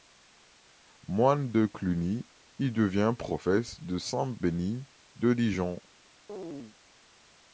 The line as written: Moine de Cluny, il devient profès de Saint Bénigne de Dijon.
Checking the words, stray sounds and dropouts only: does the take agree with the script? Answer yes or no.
no